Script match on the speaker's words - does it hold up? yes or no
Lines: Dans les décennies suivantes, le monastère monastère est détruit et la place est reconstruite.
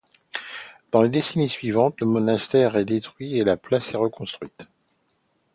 no